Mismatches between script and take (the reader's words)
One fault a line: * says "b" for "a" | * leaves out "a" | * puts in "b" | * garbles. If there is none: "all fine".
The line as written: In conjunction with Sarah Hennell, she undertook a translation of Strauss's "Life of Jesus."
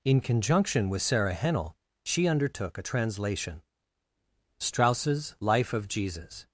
* leaves out "of"